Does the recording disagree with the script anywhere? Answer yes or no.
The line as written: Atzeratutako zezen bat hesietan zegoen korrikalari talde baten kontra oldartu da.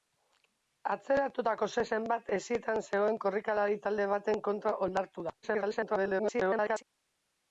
yes